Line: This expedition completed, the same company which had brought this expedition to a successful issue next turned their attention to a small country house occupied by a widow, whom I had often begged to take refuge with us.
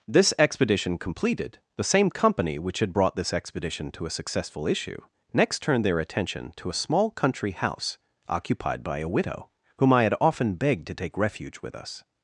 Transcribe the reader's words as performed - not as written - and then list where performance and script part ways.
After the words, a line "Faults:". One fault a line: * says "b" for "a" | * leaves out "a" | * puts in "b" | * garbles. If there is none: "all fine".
This expedition completed, the same company which had brought this expedition to a successful issue next turned their attention to a small country house occupied by a widow, whom I had often begged to take refuge with us.
Faults:
all fine